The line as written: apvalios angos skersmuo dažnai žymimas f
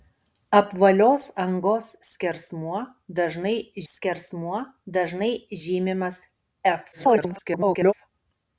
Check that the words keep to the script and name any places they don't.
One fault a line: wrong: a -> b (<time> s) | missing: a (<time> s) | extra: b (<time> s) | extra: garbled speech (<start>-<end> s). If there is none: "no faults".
extra: skersmuo dažnai (3.9 s)
extra: garbled speech (6.9-7.9 s)